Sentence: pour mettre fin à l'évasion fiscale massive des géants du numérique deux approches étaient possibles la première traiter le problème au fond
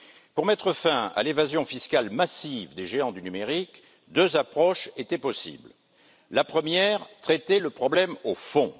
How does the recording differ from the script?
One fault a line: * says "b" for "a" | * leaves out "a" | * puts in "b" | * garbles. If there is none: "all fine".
all fine